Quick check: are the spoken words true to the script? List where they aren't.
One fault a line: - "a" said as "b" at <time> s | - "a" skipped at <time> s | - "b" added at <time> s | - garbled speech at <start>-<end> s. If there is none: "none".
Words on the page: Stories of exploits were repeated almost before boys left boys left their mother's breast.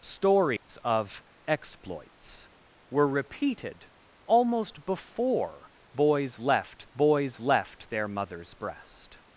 none